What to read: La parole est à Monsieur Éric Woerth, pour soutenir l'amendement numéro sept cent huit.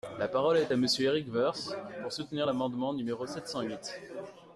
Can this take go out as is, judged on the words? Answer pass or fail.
pass